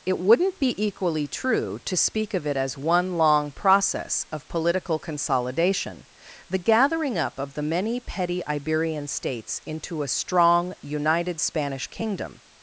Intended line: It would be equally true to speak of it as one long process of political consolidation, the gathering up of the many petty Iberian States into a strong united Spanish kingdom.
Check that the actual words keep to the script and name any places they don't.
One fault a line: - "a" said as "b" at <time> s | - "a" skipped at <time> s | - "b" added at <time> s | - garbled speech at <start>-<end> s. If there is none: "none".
- "would" said as "wouldn't" at 0.2 s